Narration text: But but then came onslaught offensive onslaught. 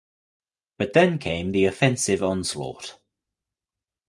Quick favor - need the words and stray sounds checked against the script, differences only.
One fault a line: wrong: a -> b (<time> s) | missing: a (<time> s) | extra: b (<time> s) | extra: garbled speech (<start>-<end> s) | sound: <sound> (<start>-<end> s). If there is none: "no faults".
missing: but (0.9 s)
wrong: onslaught -> the (1.5 s)